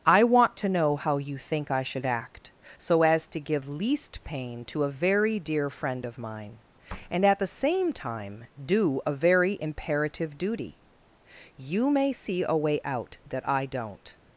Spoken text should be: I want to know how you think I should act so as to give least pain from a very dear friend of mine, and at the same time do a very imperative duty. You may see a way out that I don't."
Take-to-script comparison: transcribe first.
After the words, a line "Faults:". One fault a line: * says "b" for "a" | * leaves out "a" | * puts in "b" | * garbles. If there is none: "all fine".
I want to know how you think I should act so as to give least pain to a very dear friend of mine, and at the same time do a very imperative duty. You may see a way out that I don't."
Faults:
* says "to" for "from"